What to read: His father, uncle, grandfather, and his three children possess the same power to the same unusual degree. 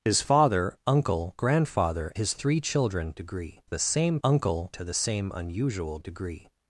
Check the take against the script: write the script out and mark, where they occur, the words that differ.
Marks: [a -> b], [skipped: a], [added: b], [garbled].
His father, uncle, grandfather, [skipped: and] his three children [possess -> degree] the same [power -> uncle] to the same unusual degree.